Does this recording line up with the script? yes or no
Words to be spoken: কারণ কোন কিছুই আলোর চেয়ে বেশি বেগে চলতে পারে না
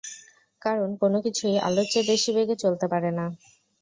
yes